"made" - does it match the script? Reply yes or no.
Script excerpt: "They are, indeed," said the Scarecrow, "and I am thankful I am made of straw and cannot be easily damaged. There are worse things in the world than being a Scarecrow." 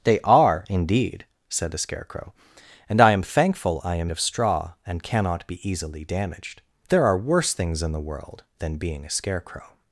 no